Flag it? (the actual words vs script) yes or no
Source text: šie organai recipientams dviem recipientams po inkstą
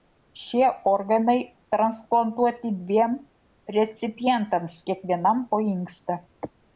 yes